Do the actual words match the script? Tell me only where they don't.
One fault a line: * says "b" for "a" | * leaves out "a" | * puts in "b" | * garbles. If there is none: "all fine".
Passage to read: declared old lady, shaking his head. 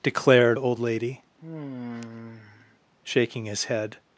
all fine